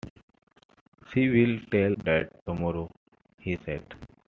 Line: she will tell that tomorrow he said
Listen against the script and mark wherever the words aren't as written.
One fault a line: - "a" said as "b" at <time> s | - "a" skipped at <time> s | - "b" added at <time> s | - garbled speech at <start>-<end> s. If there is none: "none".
none